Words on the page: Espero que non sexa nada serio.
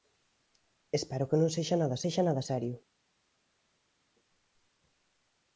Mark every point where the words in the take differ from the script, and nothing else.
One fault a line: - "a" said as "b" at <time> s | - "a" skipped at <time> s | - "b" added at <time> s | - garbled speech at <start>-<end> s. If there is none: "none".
- "sexa nada" added at 2.0 s